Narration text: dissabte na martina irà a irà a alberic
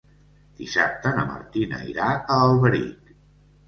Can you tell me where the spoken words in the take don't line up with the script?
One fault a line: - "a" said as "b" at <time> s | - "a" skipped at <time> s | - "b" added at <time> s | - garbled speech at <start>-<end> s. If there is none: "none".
- "irà a" skipped at 2.4 s